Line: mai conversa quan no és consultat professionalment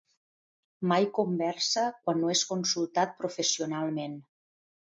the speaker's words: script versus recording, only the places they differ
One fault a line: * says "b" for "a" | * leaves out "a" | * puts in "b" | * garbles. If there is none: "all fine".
all fine